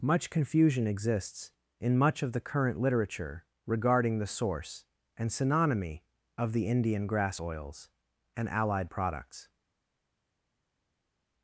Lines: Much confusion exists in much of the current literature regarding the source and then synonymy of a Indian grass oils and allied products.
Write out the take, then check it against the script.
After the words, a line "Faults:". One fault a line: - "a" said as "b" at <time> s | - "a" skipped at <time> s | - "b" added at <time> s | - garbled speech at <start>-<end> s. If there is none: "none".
Much confusion exists in much of the current literature regarding the source and synonymy of the Indian grass oils and allied products.
Faults:
- "then" skipped at 5.3 s
- "a" said as "the" at 6.5 s